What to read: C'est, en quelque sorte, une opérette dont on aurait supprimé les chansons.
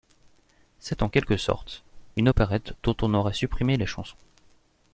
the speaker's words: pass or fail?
pass